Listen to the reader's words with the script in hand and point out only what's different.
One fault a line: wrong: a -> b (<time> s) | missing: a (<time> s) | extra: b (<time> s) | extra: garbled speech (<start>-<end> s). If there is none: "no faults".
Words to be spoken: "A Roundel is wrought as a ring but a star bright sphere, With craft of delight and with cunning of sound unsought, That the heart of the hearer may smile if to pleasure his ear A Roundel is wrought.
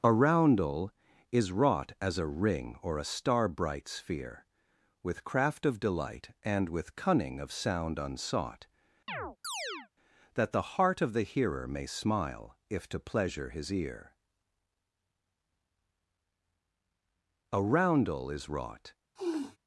wrong: but -> or (2.8 s)